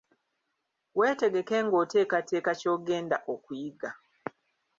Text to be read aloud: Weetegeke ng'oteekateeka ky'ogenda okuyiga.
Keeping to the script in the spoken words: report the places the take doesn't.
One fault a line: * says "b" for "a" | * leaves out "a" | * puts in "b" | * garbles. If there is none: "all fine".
all fine